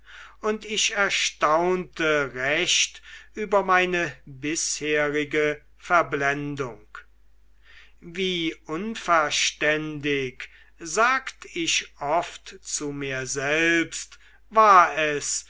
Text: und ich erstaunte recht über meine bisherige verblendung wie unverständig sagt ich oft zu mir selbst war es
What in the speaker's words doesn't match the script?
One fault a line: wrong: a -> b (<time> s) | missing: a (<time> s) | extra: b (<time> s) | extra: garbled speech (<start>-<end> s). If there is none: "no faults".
no faults